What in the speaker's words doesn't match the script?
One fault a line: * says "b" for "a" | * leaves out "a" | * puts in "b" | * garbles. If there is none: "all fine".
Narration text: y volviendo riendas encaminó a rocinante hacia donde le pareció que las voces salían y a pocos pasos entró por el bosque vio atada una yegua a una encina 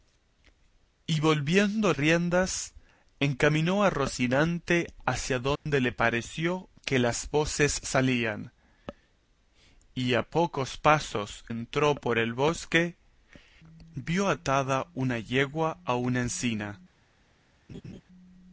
all fine